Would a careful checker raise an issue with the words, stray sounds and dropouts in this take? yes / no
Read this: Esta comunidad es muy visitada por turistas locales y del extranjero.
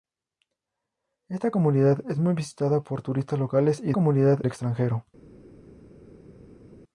yes